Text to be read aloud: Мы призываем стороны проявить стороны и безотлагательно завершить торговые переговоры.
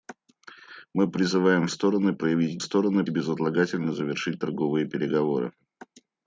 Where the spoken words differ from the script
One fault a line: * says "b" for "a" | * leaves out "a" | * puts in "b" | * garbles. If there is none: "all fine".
all fine